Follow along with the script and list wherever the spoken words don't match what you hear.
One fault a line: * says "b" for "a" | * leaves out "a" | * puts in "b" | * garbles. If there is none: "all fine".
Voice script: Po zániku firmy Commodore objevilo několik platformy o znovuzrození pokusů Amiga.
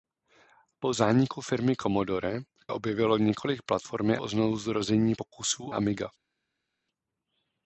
all fine